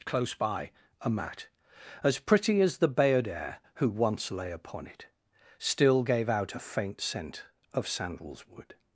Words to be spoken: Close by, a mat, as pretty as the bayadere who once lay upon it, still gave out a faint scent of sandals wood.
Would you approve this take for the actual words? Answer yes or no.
yes